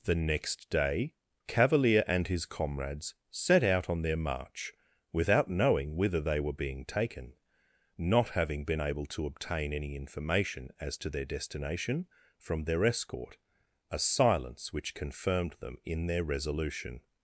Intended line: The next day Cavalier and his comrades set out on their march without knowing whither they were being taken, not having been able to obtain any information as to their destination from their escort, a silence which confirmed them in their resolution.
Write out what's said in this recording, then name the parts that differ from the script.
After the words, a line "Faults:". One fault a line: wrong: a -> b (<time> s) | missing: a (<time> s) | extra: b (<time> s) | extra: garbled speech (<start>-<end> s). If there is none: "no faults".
The next day Cavalier and his comrades set out on their march without knowing whither they were being taken, not having been able to obtain any information as to their destination from their escort, a silence which confirmed them in their resolution.
Faults:
no faults